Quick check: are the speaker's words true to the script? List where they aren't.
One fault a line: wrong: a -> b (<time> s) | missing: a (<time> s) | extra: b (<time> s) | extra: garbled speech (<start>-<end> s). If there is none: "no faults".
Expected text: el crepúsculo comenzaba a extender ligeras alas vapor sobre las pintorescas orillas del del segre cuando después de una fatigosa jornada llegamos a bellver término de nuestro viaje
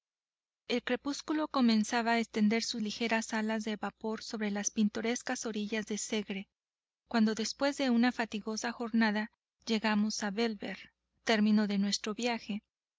extra: sus (2.6 s)
extra: de (3.7 s)
missing: del (6.0 s)